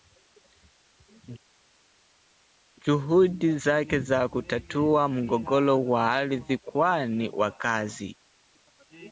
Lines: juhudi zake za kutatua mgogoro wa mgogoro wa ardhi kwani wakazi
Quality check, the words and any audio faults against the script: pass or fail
fail